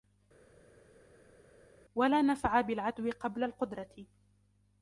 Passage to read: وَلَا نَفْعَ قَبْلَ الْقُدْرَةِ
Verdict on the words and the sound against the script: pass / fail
fail